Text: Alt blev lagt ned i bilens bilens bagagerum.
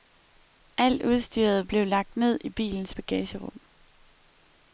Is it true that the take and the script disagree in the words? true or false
true